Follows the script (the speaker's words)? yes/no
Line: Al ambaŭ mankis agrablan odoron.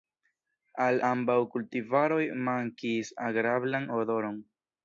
no